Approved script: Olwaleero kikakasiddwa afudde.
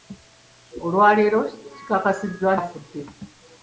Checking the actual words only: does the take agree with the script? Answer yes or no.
yes